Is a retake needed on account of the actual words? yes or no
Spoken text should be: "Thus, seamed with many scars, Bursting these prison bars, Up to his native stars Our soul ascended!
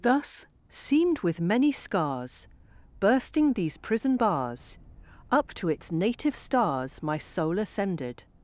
yes